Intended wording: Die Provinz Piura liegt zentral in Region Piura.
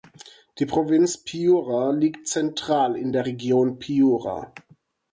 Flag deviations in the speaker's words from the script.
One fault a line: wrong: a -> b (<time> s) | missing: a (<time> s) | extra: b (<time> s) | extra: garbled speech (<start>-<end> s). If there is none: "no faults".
extra: der (3.1 s)